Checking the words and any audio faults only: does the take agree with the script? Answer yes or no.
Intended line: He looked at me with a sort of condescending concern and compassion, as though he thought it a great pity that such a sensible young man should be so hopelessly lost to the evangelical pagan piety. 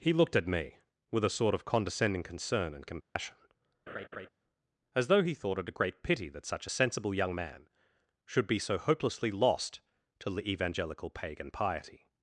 no